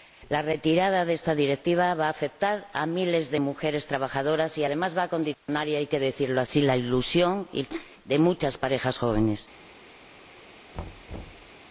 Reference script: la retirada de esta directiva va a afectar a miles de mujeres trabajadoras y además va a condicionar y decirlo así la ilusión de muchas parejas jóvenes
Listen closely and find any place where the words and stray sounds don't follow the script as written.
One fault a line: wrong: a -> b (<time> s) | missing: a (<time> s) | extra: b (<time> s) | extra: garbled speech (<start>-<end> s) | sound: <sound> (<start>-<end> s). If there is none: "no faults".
sound: dropout (5.3-5.5 s)
extra: hay que (5.8 s)
sound: thud (10.7-11.5 s)